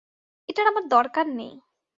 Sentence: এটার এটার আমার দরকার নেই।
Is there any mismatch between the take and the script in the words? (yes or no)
yes